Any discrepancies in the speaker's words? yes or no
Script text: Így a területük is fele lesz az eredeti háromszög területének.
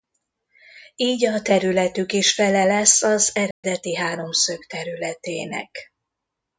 no